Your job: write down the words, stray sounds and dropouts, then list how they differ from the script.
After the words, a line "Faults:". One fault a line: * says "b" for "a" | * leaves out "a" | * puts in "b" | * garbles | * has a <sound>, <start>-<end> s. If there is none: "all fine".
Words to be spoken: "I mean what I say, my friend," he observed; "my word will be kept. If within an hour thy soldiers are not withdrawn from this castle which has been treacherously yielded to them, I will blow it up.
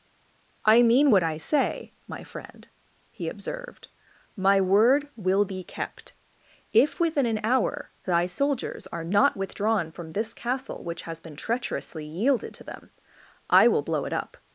"I mean what I say, my friend," he observed; "my word will be kept. If within an hour thy soldiers are not withdrawn from this castle which has been treacherously yielded to them, I will blow it up.
Faults:
all fine